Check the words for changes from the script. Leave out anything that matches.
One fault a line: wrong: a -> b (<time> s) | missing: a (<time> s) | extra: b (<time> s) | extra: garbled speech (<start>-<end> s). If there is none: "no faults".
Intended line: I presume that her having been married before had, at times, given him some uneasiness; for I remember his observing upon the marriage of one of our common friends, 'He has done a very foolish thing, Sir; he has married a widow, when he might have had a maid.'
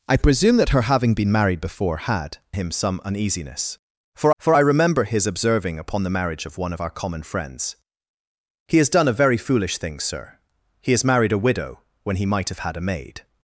missing: at times given (2.4 s)
extra: for (4.4 s)